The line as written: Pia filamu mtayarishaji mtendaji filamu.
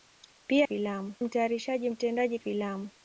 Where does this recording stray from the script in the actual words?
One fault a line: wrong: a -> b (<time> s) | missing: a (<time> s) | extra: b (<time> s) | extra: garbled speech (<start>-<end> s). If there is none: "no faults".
no faults